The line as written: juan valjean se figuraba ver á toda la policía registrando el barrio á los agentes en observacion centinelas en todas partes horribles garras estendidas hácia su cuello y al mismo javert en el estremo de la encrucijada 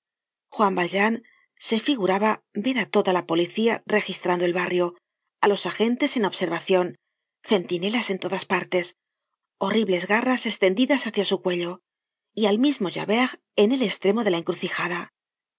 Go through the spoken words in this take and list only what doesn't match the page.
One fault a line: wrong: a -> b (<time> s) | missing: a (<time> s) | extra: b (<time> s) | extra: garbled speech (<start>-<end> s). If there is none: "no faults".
no faults